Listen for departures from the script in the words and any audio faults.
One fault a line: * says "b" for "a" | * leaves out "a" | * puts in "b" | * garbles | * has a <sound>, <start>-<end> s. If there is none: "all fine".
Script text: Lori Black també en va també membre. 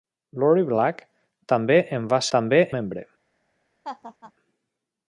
* has a laugh, 3.8-4.3 s